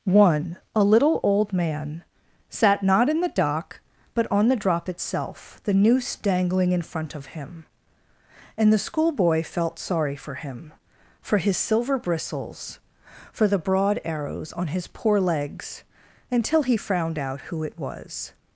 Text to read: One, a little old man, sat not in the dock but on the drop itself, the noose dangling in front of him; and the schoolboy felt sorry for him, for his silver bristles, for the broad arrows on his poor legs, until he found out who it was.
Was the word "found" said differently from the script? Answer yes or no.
yes